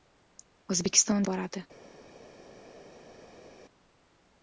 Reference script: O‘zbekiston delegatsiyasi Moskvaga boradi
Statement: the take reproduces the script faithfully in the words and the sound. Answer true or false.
false